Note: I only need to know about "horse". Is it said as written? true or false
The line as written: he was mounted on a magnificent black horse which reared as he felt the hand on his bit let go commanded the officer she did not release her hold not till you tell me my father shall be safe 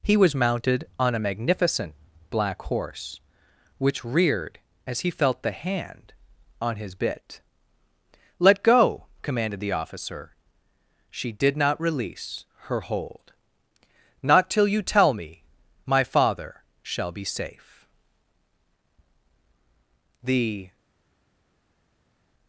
true